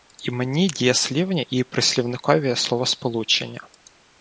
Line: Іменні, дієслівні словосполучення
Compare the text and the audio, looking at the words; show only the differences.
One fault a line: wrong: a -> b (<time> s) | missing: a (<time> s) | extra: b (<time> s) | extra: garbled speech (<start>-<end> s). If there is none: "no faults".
extra: і прислівникові (1.4 s)